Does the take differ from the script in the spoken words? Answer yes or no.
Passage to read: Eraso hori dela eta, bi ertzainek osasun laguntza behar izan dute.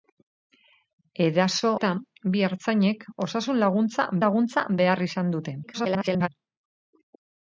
yes